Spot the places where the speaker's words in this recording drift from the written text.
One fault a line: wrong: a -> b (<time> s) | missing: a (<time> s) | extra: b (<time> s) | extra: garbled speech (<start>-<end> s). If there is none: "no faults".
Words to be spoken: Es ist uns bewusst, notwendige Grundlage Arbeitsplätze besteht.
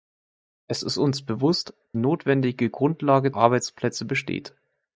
no faults